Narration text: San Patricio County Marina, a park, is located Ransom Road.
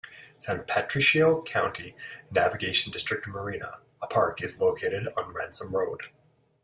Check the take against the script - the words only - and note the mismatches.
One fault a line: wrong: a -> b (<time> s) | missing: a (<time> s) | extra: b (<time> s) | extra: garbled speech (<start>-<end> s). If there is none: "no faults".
extra: Navigation District (2.3 s)
extra: on (5.2 s)